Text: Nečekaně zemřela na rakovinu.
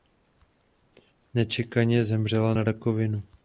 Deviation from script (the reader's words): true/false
false